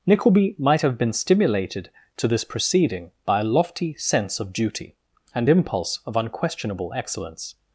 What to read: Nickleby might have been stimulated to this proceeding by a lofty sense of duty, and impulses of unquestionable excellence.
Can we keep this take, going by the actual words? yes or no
no